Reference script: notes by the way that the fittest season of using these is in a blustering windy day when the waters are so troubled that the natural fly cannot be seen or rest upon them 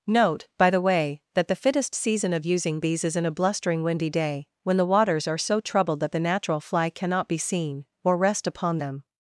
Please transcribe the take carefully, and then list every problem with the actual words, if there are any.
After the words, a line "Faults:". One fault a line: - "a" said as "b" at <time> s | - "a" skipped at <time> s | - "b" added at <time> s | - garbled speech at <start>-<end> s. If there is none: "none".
note by the way that the fittest season of using these is in a blustering windy day when the waters are so troubled that the natural fly cannot be seen or rest upon them
Faults:
- "notes" said as "note" at 0.1 s